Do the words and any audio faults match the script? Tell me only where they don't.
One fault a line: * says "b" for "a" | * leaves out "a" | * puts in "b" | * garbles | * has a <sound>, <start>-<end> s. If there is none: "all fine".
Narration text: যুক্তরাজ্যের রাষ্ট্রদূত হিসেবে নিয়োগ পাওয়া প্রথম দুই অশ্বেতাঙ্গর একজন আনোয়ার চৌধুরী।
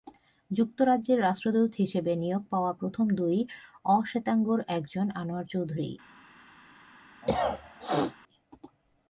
* has a cough, 7.2-8.2 s